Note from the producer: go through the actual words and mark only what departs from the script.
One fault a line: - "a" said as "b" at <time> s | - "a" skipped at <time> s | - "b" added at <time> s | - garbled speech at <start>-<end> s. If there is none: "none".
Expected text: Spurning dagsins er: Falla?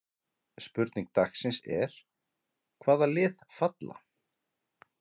- "Hvaða lið" added at 2.9 s